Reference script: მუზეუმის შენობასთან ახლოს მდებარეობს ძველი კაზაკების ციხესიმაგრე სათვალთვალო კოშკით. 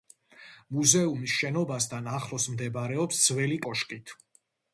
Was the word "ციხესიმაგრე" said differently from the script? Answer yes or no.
yes